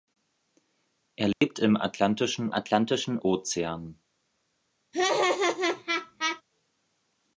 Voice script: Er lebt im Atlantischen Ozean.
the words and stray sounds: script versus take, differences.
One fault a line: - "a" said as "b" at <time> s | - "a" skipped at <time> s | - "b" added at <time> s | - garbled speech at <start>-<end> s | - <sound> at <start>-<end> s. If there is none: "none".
- dropout at 1.3-1.4 s
- "Atlantischen" added at 2.5 s
- laugh at 4.9-6.4 s